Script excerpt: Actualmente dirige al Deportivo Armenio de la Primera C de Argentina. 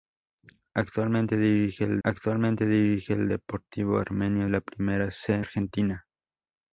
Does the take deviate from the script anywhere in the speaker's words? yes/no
yes